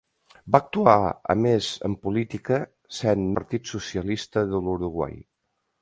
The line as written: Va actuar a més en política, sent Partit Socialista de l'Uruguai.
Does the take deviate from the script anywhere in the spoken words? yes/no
no